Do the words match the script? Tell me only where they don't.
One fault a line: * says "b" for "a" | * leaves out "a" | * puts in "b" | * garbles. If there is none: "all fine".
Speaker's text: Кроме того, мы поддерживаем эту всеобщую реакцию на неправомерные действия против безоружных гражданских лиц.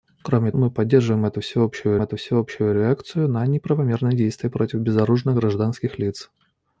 * leaves out "того"
* puts in "эту всеобщую"